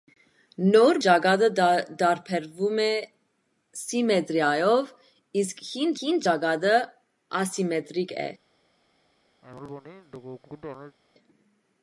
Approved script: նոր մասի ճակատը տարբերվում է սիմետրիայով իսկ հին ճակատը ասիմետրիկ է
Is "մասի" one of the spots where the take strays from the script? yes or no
yes